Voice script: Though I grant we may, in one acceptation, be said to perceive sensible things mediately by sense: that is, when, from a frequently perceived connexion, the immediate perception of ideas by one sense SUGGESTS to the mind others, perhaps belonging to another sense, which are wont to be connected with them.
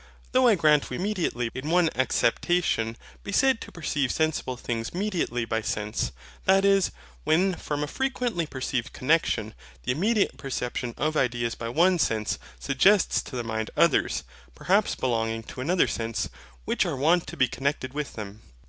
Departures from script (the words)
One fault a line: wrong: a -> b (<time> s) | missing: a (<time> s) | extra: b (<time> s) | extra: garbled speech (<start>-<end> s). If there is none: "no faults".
wrong: may -> mediately (1.0 s)